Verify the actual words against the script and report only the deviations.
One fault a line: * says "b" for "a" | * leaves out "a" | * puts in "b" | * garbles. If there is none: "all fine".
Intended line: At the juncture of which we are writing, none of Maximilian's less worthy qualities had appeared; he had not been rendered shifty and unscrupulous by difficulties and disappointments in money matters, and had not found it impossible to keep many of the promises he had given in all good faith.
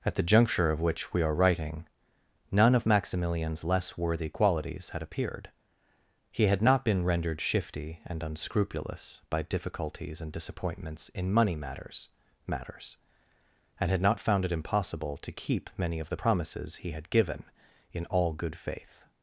* puts in "matters"